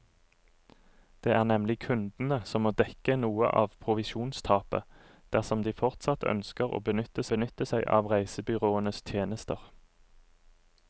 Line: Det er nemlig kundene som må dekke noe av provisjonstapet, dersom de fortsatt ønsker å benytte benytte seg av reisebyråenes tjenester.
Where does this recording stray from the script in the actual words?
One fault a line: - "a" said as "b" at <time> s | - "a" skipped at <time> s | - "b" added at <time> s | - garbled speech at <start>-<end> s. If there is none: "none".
none